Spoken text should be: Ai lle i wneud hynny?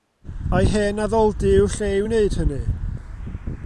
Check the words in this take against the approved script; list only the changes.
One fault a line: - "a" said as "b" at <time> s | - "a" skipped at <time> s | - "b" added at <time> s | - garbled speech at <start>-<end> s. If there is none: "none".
- "hen addoldy yw'r" added at 0.7 s